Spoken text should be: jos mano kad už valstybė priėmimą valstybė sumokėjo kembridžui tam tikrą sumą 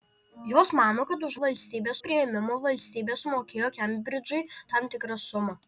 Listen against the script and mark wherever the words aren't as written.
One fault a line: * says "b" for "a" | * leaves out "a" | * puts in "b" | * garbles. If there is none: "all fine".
all fine